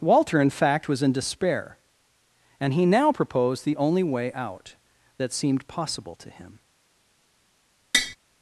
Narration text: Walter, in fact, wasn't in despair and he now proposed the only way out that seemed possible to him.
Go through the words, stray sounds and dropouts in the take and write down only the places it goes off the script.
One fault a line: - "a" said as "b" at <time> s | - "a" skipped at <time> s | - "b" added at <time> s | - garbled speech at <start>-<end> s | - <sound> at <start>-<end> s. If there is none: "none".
- "wasn't" said as "was" at 0.9 s
- tap at 7.9-8.2 s